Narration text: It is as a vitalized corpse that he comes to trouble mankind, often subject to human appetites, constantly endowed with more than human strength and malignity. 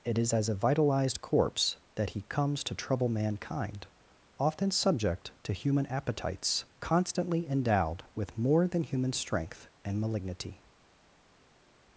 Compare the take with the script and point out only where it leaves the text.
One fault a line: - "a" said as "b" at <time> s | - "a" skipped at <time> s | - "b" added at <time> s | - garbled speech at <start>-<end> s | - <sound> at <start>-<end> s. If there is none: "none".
none